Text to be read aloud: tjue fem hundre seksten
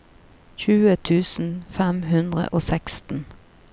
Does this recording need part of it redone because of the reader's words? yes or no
yes